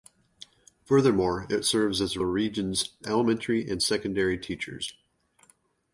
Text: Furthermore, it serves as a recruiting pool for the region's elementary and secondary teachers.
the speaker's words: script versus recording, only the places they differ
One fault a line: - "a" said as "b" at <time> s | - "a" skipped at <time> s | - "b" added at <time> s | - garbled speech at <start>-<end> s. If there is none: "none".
- "recruiting pool for" skipped at 2.2 s